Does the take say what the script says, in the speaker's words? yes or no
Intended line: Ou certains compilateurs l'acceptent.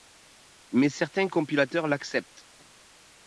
no